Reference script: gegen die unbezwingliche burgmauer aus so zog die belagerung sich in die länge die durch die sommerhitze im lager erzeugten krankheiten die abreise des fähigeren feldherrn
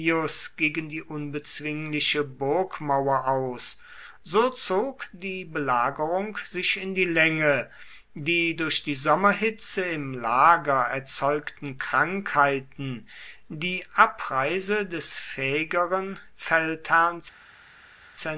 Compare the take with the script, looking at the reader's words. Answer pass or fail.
pass